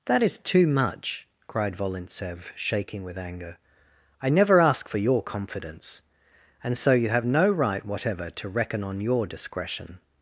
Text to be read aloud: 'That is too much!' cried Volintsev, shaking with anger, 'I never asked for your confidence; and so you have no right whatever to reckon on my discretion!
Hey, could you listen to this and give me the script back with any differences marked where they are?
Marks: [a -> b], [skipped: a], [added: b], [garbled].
'That is too much!' cried Volintsev, shaking with anger, 'I never [asked -> ask] for your confidence; and so you have no right whatever to reckon on [my -> your] discretion!